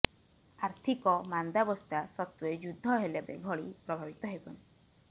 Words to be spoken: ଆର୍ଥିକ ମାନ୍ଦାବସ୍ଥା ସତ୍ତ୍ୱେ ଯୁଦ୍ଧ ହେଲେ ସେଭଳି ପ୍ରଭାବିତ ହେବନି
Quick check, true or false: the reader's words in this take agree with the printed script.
true